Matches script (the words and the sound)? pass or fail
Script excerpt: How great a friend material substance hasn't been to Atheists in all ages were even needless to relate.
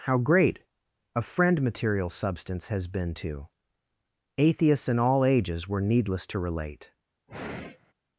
fail